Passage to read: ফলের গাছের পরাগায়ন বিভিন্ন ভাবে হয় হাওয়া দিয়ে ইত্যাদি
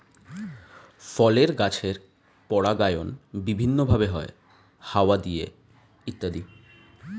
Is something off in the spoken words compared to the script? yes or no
no